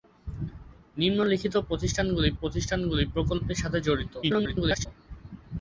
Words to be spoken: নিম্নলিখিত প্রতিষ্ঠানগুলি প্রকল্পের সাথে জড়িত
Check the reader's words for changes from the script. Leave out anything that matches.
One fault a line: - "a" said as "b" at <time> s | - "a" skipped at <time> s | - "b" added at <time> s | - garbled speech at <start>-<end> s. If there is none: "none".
- "প্রতিষ্ঠানগুলি" added at 2.4 s
- garbled speech at 4.2-4.9 s